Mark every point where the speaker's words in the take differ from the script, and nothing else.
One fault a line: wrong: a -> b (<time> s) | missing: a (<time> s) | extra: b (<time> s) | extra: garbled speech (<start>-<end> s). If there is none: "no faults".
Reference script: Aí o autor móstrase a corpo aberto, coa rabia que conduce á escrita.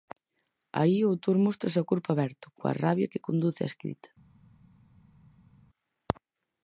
no faults